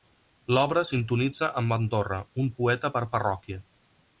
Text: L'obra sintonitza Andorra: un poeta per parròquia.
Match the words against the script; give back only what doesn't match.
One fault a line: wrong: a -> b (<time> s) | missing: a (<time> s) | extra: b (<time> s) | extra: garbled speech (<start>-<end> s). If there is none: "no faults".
extra: amb (1.6 s)